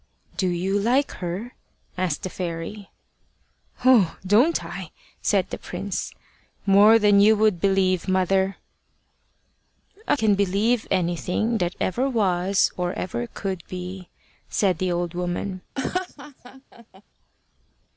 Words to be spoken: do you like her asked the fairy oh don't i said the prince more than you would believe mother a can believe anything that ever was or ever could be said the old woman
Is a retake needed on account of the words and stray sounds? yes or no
yes